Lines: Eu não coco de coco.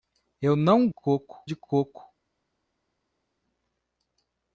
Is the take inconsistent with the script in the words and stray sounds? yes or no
no